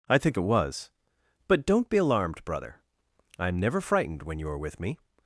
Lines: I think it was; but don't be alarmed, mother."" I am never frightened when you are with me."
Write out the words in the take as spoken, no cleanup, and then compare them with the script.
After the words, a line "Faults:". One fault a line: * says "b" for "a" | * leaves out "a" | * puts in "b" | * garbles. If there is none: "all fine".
I think it was; but don't be alarmed, brother."" I am never frightened when you are with me."
Faults:
* says "brother" for "mother"